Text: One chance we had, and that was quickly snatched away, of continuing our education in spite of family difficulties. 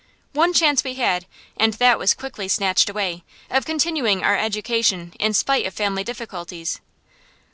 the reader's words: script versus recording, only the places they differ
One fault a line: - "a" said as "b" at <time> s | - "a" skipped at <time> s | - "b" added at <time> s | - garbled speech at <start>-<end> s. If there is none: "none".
none